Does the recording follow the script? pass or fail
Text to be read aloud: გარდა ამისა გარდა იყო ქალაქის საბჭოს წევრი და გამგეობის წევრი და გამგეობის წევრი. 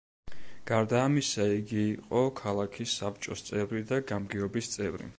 fail